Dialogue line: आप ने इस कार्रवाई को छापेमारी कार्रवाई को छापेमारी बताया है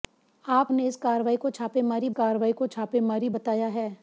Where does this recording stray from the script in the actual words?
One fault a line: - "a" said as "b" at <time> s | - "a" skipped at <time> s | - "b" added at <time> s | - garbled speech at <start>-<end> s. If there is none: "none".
none